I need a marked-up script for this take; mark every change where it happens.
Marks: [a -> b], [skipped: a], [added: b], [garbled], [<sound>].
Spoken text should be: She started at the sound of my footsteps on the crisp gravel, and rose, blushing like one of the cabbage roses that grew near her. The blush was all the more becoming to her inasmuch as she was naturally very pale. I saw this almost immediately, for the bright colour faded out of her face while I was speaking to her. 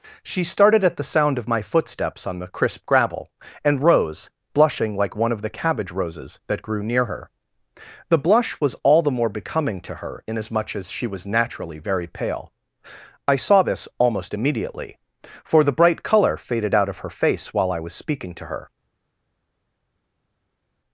She started at the sound of my footsteps on the crisp gravel, and rose, blushing like one of the cabbage roses that grew near her. The blush was all the more becoming to her inasmuch as she was naturally very pale. I saw this almost immediately, for the bright colour faded out of her face while I was speaking to her.